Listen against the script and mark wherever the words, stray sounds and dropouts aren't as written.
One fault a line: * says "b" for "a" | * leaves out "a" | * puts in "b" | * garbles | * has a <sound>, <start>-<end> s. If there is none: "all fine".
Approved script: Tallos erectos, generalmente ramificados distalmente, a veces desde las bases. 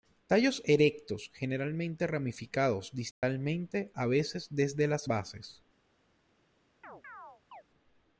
* has a dropout, 3.1-3.2 s
* has a chirp, 6.8-7.6 s